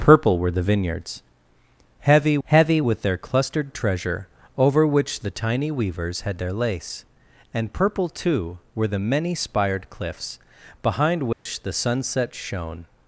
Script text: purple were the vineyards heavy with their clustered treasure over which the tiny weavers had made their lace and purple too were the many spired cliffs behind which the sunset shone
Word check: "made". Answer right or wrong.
wrong